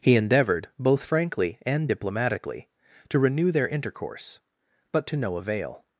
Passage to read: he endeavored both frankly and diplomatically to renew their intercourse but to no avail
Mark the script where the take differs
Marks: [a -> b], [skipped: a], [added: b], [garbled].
he endeavored both frankly and diplomatically to renew their intercourse but to no avail